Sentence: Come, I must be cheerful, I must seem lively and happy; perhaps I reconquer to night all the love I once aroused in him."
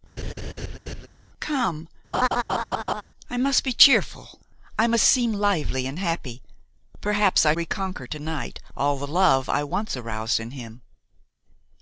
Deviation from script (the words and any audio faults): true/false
true